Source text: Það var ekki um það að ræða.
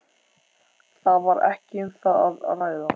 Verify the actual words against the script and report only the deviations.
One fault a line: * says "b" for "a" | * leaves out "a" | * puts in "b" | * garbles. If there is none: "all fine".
all fine